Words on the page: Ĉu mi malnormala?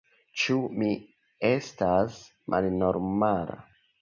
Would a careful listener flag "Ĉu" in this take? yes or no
no